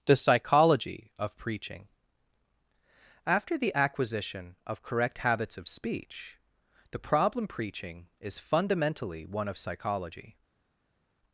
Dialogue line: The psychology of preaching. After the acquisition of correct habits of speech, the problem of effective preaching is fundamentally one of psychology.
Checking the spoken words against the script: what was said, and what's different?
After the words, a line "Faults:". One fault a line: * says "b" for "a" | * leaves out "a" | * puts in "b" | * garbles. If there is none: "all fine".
The psychology of preaching. After the acquisition of correct habits of speech, the problem preaching is fundamentally one of psychology.
Faults:
* leaves out "of effective"